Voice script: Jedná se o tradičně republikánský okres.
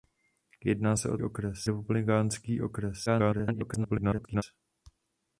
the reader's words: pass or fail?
fail